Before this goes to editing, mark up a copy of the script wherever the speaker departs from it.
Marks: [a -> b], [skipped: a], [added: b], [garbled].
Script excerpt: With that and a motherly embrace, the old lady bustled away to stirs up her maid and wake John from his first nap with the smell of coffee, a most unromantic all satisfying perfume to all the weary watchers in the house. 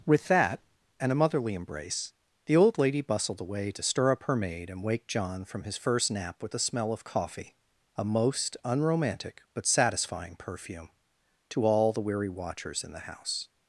With that and a motherly embrace, the old lady bustled away to [stirs -> stir] up her maid and wake John from his first nap with the smell of coffee, a most unromantic [all -> but] satisfying perfume to all the weary watchers in the house.